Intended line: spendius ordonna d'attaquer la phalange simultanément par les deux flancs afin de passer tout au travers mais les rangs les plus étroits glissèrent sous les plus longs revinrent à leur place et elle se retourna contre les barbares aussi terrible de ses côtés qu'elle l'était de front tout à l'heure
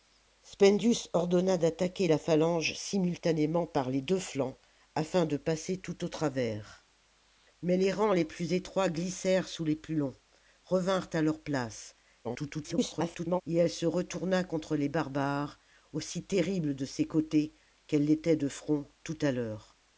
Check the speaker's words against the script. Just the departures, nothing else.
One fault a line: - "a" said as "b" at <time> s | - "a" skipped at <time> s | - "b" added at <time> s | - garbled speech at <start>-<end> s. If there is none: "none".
- garbled speech at 12.2-13.4 s